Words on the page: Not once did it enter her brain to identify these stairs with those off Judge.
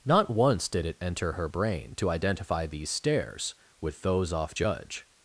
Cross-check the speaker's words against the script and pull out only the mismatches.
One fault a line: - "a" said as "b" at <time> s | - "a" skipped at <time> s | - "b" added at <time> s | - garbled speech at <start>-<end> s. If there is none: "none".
none